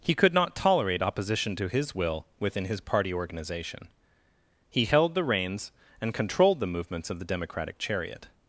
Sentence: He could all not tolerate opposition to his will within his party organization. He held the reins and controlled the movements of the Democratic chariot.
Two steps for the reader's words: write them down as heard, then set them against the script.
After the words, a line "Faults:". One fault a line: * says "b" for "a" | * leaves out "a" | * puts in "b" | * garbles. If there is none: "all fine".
He could not tolerate opposition to his will within his party organization. He held the reins and controlled the movements of the Democratic chariot.
Faults:
* leaves out "all"